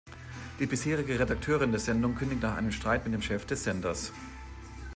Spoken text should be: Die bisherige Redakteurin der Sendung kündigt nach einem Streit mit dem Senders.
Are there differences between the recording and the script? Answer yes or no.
yes